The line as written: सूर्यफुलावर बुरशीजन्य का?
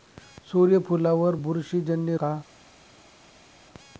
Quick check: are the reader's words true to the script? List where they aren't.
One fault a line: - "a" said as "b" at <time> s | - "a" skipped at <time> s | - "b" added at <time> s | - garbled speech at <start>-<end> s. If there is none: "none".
none